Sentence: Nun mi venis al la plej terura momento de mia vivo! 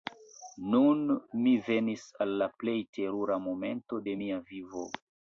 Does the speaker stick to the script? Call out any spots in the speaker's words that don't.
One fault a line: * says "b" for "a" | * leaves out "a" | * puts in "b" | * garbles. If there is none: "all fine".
all fine